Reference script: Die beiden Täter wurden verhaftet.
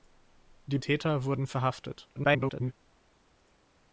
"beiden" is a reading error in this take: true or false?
true